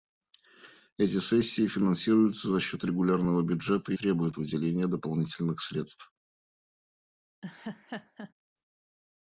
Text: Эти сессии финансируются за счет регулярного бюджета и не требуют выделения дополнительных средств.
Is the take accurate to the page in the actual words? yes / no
no